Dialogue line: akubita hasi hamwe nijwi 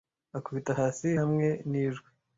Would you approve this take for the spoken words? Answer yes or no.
yes